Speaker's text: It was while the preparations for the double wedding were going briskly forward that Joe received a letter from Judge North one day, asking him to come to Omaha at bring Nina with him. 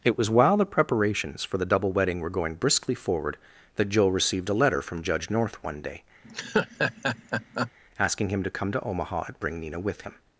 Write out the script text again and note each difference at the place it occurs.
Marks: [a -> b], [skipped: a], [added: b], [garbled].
It was while the preparations for the double wedding were going briskly forward that Joe received a letter from Judge North one day, asking him to come to Omaha at bring Nina with him.